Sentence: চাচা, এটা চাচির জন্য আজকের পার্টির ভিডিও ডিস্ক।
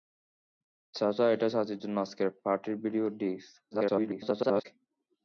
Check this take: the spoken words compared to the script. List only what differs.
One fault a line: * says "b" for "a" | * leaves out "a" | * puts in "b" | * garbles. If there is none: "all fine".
* garbles